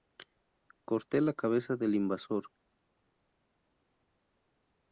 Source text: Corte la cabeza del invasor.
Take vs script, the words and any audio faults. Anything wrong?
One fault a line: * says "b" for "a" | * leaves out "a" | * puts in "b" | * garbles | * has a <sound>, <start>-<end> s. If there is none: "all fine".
all fine